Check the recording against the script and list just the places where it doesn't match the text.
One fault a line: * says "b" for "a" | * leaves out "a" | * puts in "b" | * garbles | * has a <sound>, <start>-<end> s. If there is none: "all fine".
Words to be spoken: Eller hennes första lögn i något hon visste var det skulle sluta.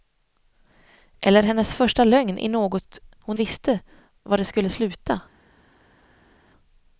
all fine